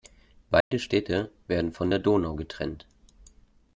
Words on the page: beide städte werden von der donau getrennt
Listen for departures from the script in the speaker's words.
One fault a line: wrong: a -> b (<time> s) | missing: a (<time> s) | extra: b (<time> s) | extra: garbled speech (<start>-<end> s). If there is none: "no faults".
no faults